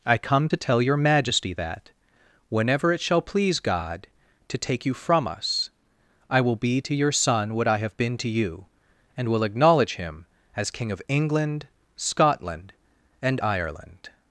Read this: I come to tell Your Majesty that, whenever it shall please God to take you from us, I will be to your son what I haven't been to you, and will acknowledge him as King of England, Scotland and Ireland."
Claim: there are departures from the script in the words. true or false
true